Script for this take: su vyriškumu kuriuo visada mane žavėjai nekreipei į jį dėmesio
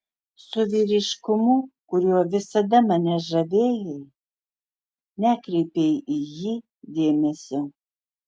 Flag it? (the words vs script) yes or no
no